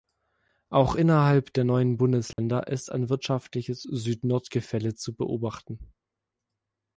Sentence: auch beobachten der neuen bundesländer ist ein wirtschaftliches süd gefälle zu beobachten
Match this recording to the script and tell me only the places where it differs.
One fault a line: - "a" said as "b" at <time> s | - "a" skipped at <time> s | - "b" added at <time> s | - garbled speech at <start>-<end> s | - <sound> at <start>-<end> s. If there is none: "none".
- "beobachten" said as "innerhalb" at 0.9 s
- dropout at 2.3-2.4 s
- "nord" added at 4.2 s